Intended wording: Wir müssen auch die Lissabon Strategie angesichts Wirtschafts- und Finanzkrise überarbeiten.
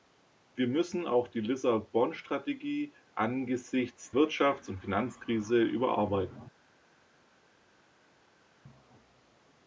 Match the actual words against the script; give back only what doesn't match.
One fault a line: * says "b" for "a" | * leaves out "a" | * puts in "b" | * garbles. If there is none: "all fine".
all fine